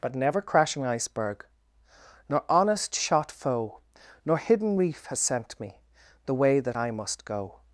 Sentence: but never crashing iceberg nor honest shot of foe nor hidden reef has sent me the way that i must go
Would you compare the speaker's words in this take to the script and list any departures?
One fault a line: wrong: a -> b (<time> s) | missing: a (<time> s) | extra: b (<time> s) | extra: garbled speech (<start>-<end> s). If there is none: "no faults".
missing: of (3.3 s)